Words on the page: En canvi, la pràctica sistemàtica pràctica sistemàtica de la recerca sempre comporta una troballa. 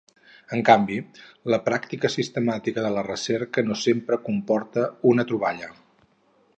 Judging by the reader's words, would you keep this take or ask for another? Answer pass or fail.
fail